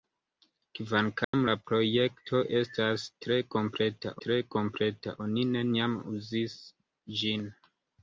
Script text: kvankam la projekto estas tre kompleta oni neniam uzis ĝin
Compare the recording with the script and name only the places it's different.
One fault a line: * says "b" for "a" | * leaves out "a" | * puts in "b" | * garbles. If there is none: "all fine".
* puts in "tre kompleta"